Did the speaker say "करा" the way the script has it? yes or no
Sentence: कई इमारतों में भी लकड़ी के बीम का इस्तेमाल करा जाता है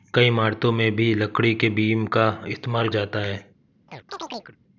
no